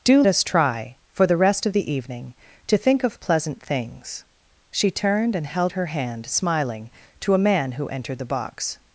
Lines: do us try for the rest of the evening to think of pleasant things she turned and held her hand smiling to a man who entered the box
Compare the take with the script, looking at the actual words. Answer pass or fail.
pass